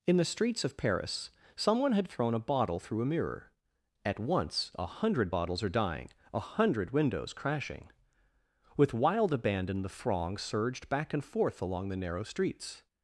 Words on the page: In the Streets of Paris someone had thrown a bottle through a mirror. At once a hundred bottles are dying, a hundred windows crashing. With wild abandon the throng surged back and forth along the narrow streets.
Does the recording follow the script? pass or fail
pass